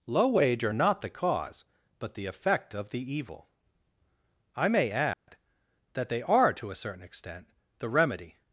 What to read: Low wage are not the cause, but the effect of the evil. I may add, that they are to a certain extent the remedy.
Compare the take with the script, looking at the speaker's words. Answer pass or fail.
pass